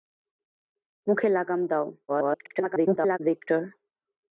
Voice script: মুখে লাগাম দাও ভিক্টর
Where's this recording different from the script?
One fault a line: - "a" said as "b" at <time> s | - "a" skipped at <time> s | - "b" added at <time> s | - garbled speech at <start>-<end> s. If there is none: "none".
- garbled speech at 2.1-3.2 s